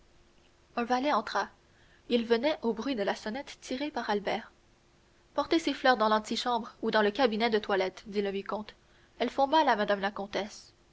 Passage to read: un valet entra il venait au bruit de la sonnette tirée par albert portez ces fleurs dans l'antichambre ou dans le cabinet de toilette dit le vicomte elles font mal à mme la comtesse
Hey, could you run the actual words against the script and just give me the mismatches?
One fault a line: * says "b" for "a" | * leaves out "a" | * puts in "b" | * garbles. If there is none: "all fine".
all fine